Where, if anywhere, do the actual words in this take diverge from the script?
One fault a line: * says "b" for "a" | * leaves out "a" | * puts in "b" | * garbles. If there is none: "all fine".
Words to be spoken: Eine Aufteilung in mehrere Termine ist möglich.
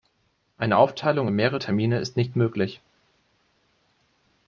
* puts in "nicht"